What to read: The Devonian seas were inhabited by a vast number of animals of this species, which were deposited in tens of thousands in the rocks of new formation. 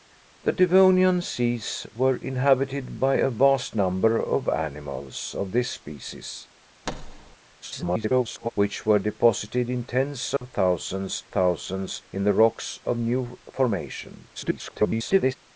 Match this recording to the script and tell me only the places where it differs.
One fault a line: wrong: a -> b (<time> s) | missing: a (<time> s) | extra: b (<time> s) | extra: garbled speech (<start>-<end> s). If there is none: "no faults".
extra: garbled speech (7.6-8.5 s)
extra: thousands (11.3 s)
extra: garbled speech (14.3-15.4 s)